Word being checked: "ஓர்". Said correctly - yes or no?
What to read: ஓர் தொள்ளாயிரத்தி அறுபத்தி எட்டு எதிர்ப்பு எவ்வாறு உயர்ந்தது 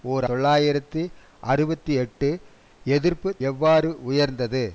yes